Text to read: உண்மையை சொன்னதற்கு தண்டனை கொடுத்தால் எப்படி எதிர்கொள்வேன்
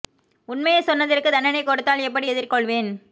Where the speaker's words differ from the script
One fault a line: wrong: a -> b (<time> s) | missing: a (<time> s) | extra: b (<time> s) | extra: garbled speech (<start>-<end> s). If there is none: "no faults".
no faults